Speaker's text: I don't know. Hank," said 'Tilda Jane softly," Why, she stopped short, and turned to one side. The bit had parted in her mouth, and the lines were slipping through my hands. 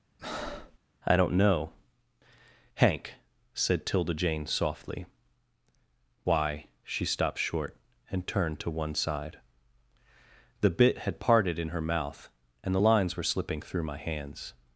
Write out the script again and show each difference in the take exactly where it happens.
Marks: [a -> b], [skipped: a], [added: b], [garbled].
I don't know. Hank," said 'Tilda Jane softly," Why, she stopped short, and turned to one side. The bit had parted in her mouth, and the lines were slipping through my hands.